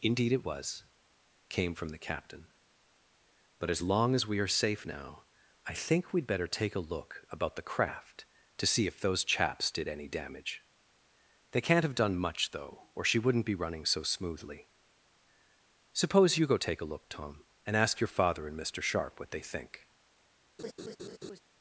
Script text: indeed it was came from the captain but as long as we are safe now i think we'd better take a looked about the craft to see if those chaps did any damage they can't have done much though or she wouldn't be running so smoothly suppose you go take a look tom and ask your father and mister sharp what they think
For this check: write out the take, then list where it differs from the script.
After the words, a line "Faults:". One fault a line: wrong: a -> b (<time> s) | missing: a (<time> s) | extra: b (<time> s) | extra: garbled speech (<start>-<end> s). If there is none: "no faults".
indeed it was came from the captain but as long as we are safe now i think we'd better take a look about the craft to see if those chaps did any damage they can't have done much though or she wouldn't be running so smoothly suppose you go take a look tom and ask your father and mister sharp what they think
Faults:
wrong: looked -> look (6.9 s)